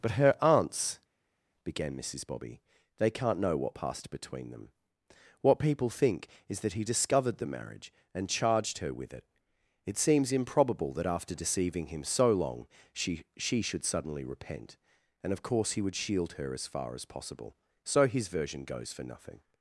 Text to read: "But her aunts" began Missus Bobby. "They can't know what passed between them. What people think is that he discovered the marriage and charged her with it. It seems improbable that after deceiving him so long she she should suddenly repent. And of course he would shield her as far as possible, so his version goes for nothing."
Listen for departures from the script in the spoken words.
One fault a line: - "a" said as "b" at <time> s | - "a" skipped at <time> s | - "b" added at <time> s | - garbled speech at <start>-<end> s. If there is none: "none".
none